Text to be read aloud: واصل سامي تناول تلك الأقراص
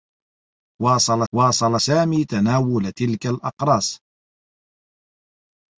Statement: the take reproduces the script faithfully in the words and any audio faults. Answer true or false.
false